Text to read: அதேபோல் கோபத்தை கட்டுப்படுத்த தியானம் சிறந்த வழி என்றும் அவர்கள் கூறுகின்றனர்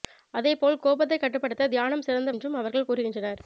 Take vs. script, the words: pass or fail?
fail